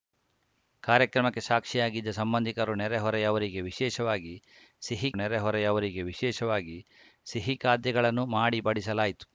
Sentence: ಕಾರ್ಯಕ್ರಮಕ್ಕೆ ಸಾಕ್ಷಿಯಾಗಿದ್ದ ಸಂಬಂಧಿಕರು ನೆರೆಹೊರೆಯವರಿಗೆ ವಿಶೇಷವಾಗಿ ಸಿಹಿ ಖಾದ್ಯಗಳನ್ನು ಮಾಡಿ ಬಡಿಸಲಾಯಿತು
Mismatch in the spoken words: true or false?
true